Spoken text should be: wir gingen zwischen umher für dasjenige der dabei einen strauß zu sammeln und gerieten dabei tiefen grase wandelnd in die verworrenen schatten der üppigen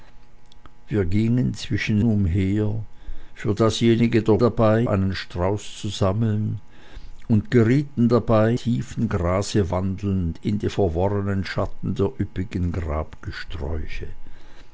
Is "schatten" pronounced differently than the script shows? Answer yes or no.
no